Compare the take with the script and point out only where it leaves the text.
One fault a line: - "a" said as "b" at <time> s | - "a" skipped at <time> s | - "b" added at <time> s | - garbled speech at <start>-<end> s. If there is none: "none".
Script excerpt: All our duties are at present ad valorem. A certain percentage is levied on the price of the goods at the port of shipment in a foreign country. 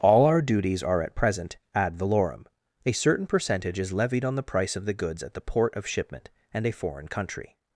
- "in" said as "and" at 6.5 s